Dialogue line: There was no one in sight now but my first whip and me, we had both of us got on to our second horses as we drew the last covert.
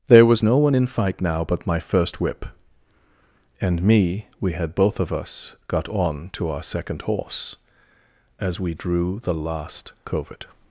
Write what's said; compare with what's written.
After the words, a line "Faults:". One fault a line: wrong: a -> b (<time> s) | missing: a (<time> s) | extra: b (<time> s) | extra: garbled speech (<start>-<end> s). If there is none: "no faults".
There was no one in fight now but my first whip and me, we had both of us got on to our second horse as we drew the last covert.
Faults:
wrong: sight -> fight (0.9 s)
wrong: horses -> horse (7.0 s)